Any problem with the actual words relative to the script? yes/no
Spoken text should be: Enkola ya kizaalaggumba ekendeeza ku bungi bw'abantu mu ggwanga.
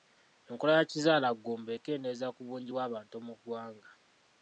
no